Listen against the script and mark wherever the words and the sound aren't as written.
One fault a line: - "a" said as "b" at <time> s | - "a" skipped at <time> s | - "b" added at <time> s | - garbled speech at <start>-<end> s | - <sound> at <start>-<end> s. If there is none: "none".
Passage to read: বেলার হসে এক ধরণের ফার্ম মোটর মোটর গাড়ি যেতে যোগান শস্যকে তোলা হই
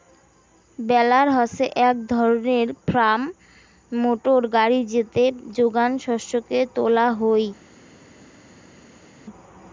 - "মোটর" skipped at 4.4 s